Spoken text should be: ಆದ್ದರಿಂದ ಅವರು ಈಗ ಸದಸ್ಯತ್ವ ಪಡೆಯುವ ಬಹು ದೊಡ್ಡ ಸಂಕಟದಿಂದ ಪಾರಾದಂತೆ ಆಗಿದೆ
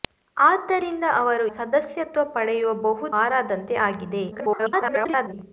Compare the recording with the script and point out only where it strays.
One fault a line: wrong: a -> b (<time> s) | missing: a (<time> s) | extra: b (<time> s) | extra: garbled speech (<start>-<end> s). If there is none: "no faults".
missing: ಈಗ (1.4 s)
missing: ದೊಡ್ಡ ಸಂಕಟದಿಂದ (3.1 s)
extra: garbled speech (4.3-5.3 s)